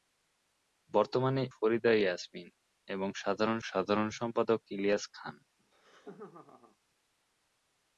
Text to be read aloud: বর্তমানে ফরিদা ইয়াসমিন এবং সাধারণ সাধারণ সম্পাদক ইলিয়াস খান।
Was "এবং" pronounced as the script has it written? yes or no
yes